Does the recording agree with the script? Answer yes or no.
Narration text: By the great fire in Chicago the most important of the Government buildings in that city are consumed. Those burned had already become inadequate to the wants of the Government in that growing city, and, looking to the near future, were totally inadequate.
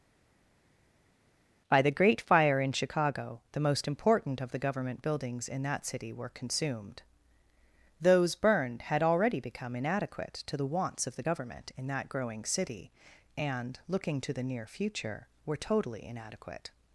no